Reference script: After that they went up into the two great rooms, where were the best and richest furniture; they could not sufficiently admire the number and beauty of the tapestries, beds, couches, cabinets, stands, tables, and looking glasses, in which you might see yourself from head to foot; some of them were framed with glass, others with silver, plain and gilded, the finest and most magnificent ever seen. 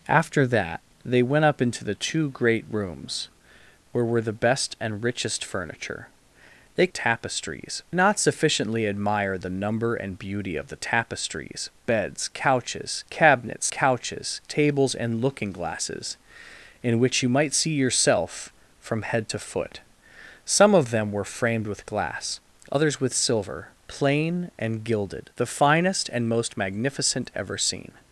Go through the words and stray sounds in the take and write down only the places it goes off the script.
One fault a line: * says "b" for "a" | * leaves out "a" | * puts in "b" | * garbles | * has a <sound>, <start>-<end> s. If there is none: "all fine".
* says "tapestries" for "could"
* says "couches" for "stands"